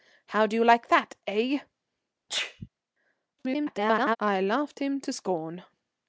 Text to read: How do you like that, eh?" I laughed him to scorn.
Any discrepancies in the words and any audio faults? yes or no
yes